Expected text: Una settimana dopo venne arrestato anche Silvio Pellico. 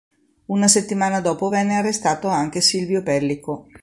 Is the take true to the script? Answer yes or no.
yes